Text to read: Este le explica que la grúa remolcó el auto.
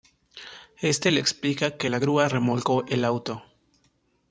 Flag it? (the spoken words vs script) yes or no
no